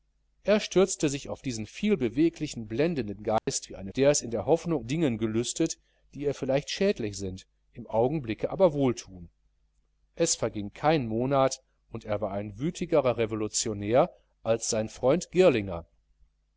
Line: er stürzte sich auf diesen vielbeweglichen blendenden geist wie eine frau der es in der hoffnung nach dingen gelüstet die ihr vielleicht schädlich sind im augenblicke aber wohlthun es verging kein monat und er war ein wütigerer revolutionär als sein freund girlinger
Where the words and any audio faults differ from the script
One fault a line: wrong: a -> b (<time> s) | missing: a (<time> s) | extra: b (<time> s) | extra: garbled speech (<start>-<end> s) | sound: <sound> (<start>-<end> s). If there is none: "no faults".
sound: dropout (3.4-3.5 s)
missing: frau (3.9 s)
missing: nach (4.8 s)